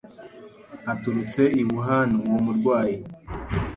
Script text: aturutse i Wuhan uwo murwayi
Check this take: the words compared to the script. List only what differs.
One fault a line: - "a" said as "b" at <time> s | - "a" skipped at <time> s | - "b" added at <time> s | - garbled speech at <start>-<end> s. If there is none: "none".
none